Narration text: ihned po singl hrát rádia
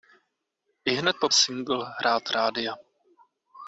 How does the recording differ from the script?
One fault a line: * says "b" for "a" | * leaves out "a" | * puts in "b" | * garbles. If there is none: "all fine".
all fine